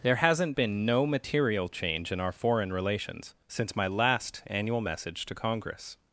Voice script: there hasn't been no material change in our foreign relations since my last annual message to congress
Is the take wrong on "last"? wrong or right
right